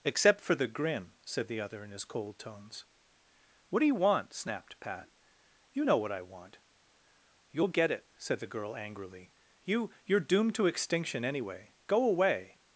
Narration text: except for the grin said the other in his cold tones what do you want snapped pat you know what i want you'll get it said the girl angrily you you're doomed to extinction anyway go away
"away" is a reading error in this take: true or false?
false